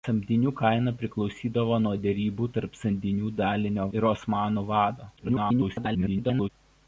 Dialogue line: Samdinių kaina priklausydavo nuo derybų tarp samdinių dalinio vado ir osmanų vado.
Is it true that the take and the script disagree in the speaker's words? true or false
true